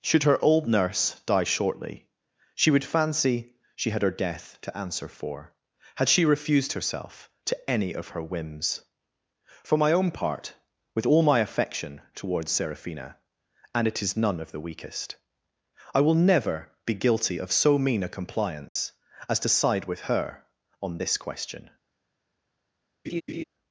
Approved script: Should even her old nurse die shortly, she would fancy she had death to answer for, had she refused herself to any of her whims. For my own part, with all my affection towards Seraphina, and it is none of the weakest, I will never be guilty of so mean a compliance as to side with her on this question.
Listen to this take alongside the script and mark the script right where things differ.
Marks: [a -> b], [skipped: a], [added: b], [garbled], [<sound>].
Should [skipped: even] her old nurse die shortly, she would fancy she had [added: her] death to answer for, had she refused herself to any of her whims. For my own part, with all my affection towards Seraphina, and it is none of the weakest, I will never be guilty of so mean a compliance [dropout] as to side with her on this question. [laugh]